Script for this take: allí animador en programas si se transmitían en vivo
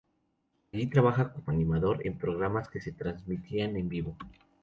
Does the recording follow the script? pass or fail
fail